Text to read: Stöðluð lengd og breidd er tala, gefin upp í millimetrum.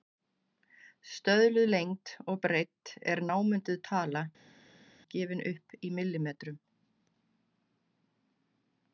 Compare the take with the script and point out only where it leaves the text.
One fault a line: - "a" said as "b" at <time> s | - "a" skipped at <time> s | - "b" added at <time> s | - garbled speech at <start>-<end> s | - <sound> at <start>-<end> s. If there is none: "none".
- "námunduð" added at 3.3 s